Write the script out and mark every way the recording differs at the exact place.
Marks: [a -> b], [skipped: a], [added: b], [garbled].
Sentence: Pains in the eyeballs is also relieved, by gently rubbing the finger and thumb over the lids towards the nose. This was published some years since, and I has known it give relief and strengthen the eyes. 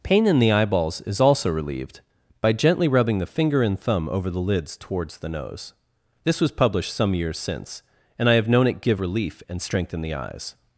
[Pains -> Pain] in the eyeballs is also relieved, by gently rubbing the finger and thumb over the lids towards the nose. This was published some years since, and I [has -> have] known it give relief and strengthen the eyes.